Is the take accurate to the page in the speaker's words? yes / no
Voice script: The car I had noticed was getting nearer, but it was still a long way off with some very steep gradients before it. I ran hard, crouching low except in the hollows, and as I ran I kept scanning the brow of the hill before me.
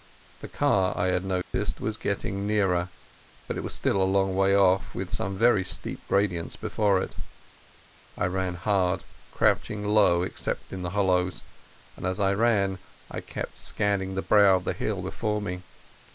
yes